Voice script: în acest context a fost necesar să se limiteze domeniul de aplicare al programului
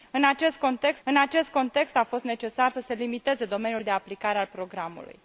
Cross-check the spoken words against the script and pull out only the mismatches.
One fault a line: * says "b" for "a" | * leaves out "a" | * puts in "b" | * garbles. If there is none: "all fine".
* puts in "în acest context"